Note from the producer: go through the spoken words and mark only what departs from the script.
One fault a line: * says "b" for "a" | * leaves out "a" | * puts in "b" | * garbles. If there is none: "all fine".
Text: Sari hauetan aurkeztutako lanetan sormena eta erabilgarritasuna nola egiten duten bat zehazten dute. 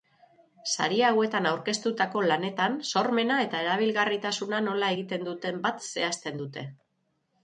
all fine